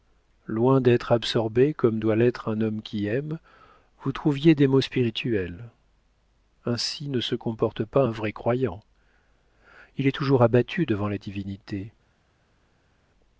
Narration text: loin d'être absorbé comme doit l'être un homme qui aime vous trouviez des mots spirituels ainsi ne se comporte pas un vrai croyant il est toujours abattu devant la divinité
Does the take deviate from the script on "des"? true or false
false